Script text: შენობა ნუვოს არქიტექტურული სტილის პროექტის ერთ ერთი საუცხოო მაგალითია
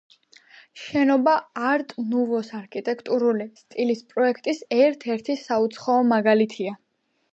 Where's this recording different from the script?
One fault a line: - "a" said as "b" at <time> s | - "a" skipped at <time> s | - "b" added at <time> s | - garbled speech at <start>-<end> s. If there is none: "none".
- "არტ" added at 1.7 s